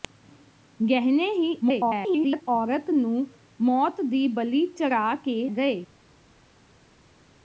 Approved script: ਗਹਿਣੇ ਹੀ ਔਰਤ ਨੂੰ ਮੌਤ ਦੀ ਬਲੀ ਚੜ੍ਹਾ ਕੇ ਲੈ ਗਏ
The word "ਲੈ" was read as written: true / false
false